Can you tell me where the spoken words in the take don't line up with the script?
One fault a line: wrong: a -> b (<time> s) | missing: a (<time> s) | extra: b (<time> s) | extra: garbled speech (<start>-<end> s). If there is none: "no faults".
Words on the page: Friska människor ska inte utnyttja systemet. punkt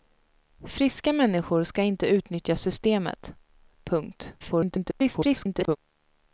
extra: garbled speech (4.4-5.8 s)